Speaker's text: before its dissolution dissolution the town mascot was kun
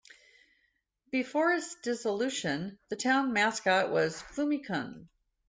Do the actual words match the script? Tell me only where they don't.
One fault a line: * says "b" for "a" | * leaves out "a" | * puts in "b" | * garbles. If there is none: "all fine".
* leaves out "dissolution"
* puts in "fumi"